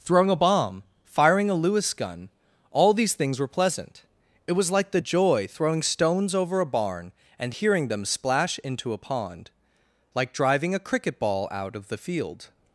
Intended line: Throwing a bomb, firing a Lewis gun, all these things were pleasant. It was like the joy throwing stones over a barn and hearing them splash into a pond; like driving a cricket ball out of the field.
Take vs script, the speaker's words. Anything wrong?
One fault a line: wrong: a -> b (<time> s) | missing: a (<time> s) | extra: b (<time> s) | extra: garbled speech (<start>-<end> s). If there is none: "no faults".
no faults